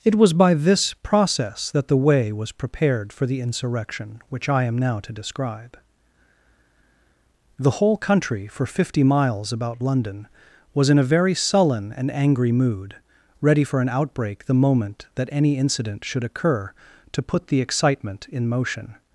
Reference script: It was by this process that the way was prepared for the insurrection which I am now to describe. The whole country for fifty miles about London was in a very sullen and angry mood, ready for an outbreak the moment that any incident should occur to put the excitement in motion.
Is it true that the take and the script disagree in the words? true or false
false